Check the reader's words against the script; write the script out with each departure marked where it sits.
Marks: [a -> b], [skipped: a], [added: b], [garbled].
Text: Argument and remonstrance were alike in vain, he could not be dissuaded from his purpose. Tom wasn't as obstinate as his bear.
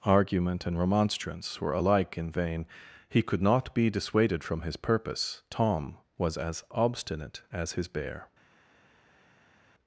Argument and remonstrance were alike in vain, he could not be dissuaded from his purpose. Tom [wasn't -> was] as obstinate as his bear.